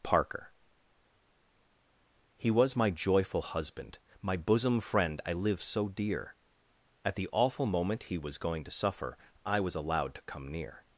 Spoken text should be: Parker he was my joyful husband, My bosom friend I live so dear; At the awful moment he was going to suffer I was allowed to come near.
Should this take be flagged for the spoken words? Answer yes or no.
no